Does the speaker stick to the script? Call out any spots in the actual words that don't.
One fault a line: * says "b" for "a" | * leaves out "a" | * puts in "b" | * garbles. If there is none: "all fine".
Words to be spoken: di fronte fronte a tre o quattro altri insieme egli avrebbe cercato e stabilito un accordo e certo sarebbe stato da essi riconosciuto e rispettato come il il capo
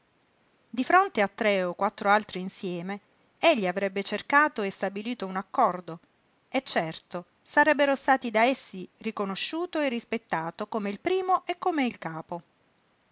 * leaves out "fronte"
* puts in "primo e come"